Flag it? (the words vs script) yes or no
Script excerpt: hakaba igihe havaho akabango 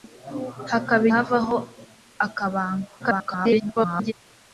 yes